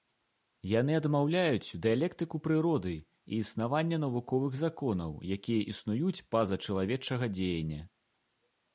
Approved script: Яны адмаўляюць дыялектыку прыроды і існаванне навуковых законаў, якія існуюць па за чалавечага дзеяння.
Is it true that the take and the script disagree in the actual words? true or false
false